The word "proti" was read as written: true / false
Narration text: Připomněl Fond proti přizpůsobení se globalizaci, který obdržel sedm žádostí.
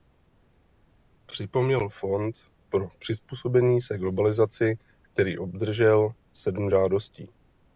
false